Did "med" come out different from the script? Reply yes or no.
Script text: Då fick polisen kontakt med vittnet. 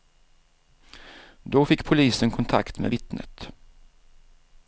no